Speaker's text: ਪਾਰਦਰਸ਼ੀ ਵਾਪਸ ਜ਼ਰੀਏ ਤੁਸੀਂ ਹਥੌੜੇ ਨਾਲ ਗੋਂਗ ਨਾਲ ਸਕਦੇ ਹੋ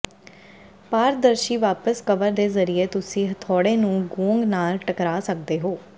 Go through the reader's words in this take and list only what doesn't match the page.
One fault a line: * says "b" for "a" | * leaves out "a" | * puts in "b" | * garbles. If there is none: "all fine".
* puts in "ਕਵਰ ਦੇ"
* says "ਨੂੰ" for "ਨਾਲ"
* puts in "ਟਕਰਾ"